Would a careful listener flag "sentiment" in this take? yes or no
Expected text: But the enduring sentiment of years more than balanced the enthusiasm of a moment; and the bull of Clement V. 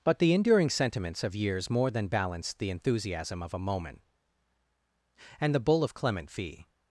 yes